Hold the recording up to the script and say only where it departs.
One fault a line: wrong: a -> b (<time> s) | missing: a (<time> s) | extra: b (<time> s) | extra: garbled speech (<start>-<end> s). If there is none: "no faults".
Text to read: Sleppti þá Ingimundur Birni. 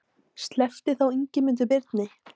no faults